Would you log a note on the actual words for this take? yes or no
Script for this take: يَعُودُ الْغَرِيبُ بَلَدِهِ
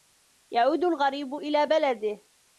yes